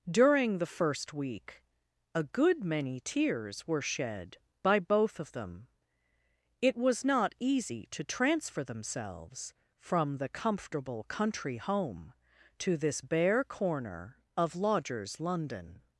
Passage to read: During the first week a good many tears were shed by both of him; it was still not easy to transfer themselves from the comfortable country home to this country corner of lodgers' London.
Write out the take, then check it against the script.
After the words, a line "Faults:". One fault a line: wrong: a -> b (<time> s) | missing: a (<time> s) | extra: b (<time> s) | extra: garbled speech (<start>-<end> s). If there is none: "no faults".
During the first week a good many tears were shed by both of them; it was not easy to transfer themselves from the comfortable country home to this bare corner of lodgers' London.
Faults:
wrong: him -> them (5.3 s)
missing: still (7.0 s)
wrong: country -> bare (13.0 s)